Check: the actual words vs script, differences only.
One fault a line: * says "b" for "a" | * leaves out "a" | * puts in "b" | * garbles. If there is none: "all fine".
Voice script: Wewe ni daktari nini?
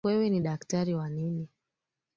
* puts in "wa"